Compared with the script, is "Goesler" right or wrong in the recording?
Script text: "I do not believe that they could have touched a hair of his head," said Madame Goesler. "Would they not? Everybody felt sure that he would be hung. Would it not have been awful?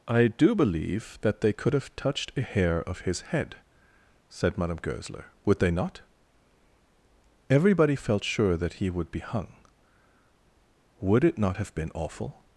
right